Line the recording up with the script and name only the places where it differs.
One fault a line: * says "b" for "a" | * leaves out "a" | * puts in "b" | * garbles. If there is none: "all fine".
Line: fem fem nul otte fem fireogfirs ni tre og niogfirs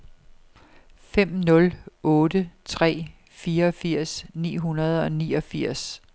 * leaves out "fem"
* says "tre" for "fem"
* says "hundrede" for "tre"